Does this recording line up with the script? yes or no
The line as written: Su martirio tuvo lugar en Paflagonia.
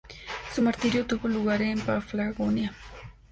yes